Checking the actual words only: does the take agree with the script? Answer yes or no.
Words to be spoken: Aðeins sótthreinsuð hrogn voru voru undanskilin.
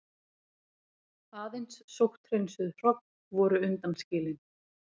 no